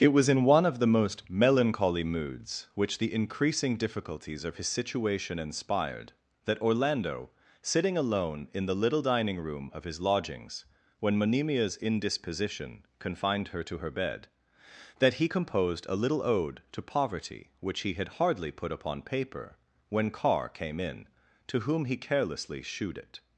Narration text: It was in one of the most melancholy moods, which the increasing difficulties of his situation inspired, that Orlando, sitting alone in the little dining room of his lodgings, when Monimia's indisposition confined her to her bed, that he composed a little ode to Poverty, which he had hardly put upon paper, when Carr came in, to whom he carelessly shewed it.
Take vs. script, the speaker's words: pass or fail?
pass